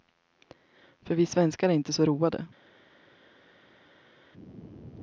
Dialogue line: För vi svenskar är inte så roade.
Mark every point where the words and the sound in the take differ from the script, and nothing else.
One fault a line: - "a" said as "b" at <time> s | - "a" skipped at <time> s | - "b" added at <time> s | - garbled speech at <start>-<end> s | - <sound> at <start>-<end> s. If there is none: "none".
none